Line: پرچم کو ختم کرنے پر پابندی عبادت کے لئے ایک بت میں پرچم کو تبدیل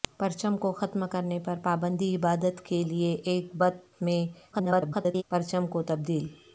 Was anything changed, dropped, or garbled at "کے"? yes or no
no